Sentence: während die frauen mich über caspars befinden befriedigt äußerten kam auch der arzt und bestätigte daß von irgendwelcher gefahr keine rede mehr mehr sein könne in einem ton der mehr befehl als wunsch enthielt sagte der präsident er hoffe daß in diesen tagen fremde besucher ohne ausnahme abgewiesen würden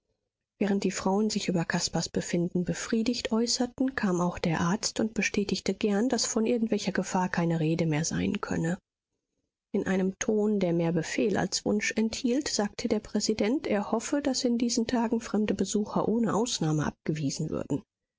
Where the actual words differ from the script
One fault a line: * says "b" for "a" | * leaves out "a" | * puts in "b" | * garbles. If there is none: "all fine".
* says "sich" for "mich"
* puts in "gern"
* leaves out "mehr"